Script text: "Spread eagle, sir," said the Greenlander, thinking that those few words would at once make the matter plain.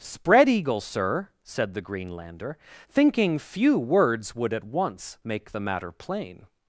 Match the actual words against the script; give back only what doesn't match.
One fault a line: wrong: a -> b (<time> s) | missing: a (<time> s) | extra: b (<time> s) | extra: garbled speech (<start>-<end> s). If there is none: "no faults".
missing: that those (3.4 s)